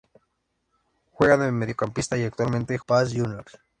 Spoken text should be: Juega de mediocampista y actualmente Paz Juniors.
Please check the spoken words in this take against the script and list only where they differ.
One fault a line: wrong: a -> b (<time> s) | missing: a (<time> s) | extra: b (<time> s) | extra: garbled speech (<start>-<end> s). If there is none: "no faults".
no faults